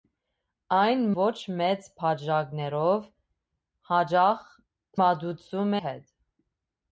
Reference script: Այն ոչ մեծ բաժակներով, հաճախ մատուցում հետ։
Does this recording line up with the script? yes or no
yes